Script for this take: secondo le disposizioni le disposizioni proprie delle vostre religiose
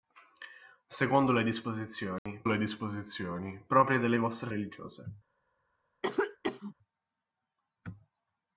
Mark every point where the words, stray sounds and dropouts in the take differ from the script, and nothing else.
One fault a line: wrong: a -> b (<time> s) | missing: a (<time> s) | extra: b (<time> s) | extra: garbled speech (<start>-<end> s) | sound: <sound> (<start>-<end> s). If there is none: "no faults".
sound: dropout (2.2-2.3 s)
sound: cough (6.0-6.7 s)